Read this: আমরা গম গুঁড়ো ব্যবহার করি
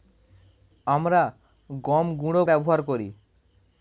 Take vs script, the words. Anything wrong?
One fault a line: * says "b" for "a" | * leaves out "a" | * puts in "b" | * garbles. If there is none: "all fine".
all fine